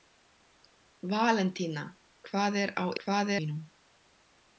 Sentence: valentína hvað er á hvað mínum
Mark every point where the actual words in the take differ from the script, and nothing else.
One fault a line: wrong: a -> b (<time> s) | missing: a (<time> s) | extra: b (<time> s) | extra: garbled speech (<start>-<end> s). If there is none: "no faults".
no faults